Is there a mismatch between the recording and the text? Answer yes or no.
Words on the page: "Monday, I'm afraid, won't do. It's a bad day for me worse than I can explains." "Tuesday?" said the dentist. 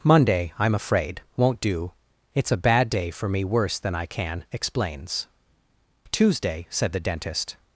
no